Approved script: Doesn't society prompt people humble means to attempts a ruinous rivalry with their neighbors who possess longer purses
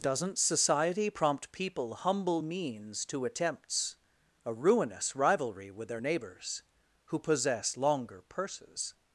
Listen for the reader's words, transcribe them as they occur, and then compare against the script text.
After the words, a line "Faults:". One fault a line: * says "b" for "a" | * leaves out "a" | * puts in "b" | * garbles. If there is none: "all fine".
Doesn't society prompt people humble means to attempts a ruinous rivalry with their neighbors who possess longer purses
Faults:
all fine